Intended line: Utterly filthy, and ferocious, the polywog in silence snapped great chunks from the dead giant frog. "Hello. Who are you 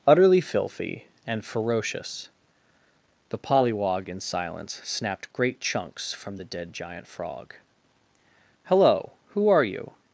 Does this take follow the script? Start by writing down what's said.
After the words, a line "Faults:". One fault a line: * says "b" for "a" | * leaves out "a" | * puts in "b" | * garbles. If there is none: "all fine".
Utterly filthy, and ferocious, the polywog in silence snapped great chunks from the dead giant frog. "Hello. Who are you
Faults:
all fine